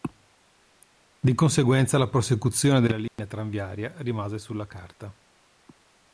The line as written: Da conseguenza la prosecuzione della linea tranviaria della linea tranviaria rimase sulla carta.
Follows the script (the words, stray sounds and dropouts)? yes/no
no